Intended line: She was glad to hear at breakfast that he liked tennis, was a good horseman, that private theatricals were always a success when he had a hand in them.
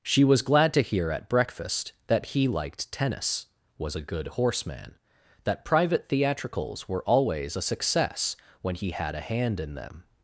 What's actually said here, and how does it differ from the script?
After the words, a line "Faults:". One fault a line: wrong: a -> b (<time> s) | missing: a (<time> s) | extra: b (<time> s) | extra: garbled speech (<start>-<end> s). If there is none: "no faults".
She was glad to hear at breakfast that he liked tennis, was a good horseman, that private theatricals were always a success when he had a hand in them.
Faults:
no faults